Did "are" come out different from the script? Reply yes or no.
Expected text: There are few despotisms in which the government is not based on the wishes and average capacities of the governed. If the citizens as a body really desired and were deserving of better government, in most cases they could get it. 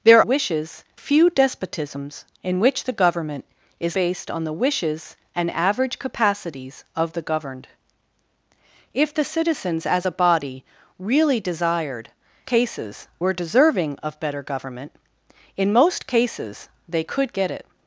yes